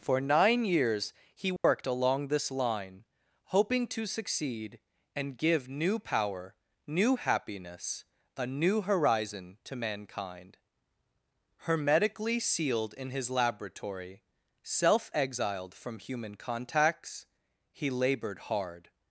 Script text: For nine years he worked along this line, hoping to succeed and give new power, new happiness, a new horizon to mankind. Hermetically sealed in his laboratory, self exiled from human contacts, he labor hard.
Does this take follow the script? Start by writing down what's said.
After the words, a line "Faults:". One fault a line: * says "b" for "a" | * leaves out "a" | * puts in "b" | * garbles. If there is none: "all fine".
For nine years he worked along this line, hoping to succeed and give new power, new happiness, a new horizon to mankind. Hermetically sealed in his laboratory, self exiled from human contacts, he labored hard.
Faults:
* says "labored" for "labor"